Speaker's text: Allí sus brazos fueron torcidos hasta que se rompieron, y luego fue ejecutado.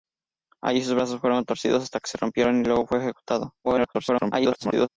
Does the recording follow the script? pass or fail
fail